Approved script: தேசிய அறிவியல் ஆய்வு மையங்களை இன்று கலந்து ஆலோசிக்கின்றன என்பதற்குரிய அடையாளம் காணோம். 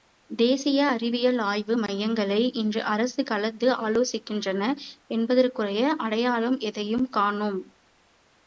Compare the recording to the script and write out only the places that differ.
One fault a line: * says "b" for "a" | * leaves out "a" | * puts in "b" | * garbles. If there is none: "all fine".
* puts in "அரசு"
* puts in "எதையும்"